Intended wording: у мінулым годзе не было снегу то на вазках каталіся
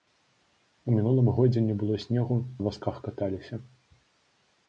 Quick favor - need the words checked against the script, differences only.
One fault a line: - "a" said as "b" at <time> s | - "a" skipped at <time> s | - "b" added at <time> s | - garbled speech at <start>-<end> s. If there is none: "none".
- "то" skipped at 2.4 s